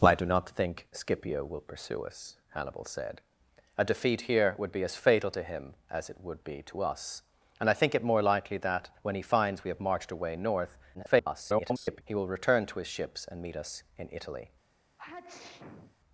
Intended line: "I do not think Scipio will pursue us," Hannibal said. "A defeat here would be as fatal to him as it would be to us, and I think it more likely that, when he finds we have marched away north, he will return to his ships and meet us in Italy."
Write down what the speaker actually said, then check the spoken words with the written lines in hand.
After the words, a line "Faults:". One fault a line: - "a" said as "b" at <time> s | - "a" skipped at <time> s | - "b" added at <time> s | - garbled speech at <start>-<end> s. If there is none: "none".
"I do not think Scipio will pursue us," Hannibal said. "A defeat here would be as fatal to him as it would be to us, and I think it more likely that, when he finds we have marched away north, [garbled] he will return to his ships and meet us in Italy."
Faults:
- garbled speech at 10.9-12.0 s